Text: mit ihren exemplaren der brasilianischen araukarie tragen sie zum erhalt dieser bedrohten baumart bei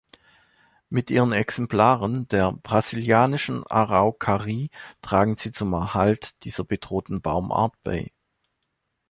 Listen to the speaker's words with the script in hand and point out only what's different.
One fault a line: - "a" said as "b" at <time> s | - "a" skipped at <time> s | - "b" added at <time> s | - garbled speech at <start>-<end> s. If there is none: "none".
none